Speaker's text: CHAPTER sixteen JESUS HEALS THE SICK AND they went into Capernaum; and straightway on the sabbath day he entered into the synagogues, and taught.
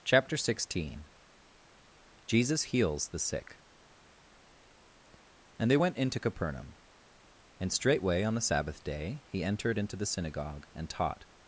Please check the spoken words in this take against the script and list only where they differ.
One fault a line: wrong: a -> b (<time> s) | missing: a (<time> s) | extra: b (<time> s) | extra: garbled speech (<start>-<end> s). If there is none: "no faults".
wrong: synagogues -> synagogue (10.1 s)